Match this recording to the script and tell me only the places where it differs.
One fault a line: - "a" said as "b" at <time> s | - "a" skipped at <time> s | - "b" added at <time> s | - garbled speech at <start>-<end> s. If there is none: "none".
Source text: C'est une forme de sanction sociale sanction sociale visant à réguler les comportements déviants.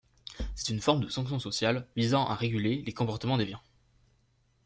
- "sanction sociale" skipped at 1.9 s